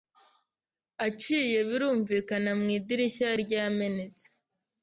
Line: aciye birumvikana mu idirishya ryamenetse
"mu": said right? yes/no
yes